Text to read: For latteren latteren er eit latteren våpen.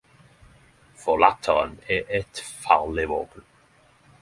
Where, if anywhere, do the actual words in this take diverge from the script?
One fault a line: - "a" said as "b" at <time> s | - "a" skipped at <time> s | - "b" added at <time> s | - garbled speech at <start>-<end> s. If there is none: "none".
- "latteren" skipped at 1.7 s
- "latteren" said as "farleg" at 2.6 s